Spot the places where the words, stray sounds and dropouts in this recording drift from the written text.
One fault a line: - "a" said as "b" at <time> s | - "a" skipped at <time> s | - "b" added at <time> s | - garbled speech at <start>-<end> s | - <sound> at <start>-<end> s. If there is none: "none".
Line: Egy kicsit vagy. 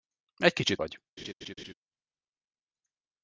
- laugh at 1.2-1.7 s